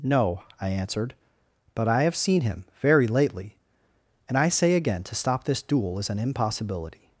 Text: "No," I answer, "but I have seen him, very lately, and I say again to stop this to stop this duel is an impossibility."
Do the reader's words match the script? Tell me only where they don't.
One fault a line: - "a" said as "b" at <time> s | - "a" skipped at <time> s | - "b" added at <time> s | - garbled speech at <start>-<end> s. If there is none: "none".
- "answer" said as "answered" at 0.7 s
- "to stop this" skipped at 5.6 s